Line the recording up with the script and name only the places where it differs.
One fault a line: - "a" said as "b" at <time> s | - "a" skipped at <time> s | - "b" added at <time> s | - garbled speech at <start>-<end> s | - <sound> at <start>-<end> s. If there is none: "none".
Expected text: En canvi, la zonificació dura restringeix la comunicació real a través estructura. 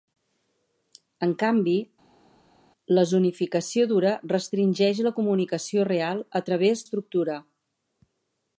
none